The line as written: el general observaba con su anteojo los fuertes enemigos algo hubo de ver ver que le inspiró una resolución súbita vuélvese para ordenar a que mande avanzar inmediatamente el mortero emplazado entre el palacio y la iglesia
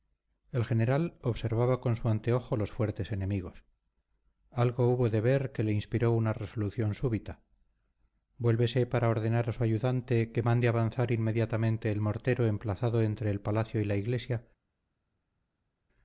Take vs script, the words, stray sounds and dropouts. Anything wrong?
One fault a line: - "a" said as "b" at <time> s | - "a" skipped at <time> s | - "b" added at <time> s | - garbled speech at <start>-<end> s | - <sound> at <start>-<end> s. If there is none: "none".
- "ver" skipped at 5.5 s
- "su ayudante" added at 9.5 s